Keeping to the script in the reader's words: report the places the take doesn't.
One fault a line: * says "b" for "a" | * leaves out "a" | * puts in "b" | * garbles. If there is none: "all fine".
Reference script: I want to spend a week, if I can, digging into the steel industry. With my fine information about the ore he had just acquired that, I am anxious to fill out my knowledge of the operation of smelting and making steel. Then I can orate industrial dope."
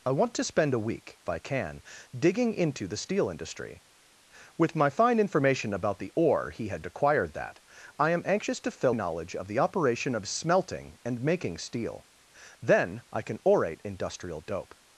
* leaves out "if"
* leaves out "just"
* leaves out "out my"